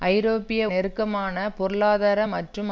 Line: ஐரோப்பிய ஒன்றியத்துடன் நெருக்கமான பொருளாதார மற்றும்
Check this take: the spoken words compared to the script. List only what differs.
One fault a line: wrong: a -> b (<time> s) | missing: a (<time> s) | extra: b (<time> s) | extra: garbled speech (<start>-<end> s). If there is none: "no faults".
missing: ஒன்றியத்துடன் (0.6 s)